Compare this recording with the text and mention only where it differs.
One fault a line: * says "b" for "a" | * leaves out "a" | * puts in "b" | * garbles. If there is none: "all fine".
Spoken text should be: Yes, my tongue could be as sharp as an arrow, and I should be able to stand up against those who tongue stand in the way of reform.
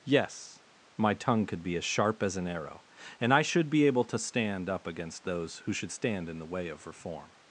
* says "should" for "tongue"